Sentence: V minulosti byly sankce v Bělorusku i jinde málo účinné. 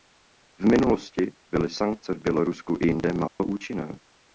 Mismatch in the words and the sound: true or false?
true